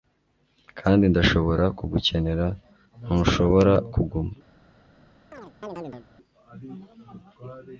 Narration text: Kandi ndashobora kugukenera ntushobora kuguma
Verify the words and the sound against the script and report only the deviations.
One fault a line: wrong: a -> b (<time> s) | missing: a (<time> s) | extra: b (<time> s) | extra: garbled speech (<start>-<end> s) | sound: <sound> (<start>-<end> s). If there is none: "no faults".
sound: chirp (5.3-6.1 s)